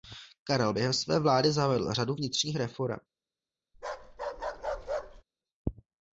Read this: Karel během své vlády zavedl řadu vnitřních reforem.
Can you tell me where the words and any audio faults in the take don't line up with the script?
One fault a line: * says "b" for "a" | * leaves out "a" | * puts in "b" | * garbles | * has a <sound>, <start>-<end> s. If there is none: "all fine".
* has a bark, 3.7-5.2 s